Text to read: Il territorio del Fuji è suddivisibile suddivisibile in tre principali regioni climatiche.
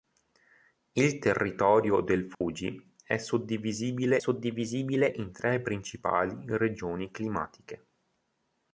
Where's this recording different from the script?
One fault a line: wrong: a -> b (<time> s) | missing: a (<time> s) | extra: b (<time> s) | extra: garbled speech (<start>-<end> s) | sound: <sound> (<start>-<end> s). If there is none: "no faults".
sound: dropout (2.3-2.4 s)